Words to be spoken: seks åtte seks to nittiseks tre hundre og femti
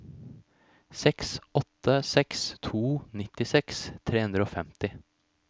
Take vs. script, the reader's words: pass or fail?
pass